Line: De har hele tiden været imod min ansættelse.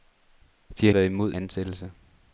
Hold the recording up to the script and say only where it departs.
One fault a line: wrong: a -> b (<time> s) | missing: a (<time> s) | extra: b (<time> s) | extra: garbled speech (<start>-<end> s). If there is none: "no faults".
missing: hele tiden (0.9 s)
missing: min (1.3 s)